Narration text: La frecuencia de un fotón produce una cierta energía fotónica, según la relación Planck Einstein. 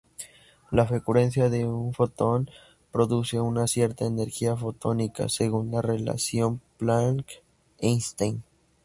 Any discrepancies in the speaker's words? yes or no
no